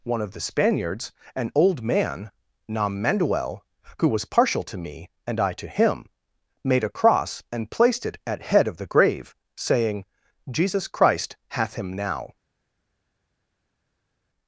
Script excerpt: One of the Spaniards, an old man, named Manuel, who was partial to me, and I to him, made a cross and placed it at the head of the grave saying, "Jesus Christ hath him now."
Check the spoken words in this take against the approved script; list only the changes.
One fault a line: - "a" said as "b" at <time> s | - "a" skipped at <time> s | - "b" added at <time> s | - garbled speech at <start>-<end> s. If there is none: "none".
- "named" said as "nam" at 2.7 s
- "the" skipped at 8.4 s